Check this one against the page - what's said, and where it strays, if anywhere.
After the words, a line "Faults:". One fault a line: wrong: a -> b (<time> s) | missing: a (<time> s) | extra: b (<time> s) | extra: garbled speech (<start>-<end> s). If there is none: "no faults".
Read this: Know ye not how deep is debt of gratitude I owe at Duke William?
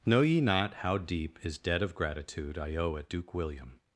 Know ye not how deep is debt of gratitude I owe at Duke William?
Faults:
no faults